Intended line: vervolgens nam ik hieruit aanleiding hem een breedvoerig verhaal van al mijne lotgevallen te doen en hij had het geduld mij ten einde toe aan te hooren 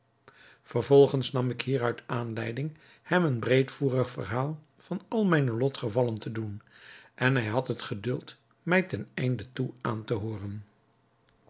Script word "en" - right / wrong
right